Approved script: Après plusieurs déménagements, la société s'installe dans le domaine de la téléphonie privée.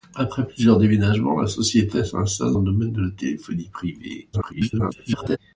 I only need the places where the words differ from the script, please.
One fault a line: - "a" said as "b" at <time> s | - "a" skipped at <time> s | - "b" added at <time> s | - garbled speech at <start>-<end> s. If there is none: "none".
- "dans" skipped at 2.6 s
- garbled speech at 4.3-5.4 s